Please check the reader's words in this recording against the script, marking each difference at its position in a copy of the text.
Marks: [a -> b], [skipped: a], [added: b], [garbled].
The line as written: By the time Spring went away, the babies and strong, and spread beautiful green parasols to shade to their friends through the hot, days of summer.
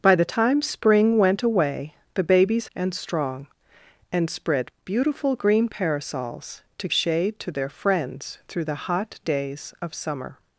By the time Spring went away, the babies and strong, and spread beautiful green parasols to shade to their friends through the hot, days of summer.